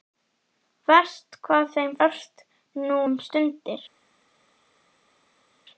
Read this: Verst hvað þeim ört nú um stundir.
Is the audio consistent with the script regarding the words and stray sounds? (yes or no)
yes